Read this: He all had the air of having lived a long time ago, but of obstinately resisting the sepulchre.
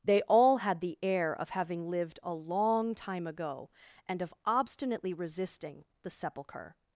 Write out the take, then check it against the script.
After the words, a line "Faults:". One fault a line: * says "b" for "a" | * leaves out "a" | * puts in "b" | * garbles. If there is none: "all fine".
They all had the air of having lived a long time ago, and of obstinately resisting the sepulchre.
Faults:
* says "They" for "He"
* says "and" for "but"